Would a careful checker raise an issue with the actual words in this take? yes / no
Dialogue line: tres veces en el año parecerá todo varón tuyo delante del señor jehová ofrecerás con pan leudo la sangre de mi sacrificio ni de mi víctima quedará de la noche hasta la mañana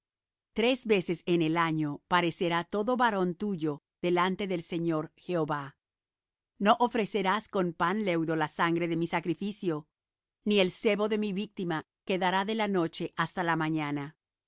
yes